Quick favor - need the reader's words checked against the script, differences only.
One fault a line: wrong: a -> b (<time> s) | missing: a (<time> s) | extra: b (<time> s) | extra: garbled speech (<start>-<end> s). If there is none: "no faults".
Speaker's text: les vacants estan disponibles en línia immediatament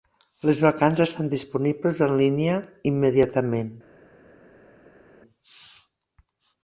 no faults